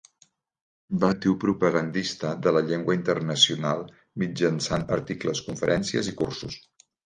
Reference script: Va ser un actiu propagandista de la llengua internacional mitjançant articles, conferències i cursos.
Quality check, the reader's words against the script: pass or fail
fail